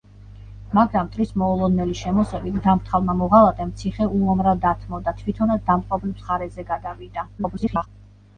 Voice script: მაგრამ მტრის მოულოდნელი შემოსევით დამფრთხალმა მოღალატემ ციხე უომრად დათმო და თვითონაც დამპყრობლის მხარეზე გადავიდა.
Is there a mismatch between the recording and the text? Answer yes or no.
yes